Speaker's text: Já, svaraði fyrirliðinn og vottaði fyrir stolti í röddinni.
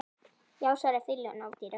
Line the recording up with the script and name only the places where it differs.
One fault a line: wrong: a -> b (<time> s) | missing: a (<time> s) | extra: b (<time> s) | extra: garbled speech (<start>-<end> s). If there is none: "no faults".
missing: vottaði fyrir stolti (1.5 s)